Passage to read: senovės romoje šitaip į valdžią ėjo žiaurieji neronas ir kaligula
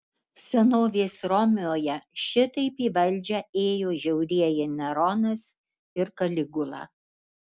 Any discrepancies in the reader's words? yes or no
no